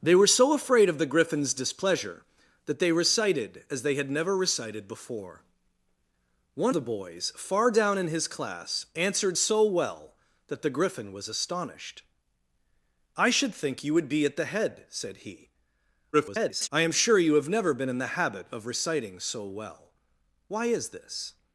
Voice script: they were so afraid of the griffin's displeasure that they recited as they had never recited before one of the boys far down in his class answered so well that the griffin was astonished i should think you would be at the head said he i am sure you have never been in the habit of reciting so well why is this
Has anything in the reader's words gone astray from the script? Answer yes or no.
yes